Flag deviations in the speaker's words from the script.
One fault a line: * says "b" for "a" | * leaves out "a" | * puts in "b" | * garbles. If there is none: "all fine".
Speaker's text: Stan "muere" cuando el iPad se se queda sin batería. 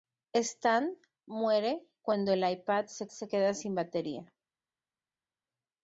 all fine